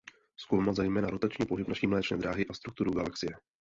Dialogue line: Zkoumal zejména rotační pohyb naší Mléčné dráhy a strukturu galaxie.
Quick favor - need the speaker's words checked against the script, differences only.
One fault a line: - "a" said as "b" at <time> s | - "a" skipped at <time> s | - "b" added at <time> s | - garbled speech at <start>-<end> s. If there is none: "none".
none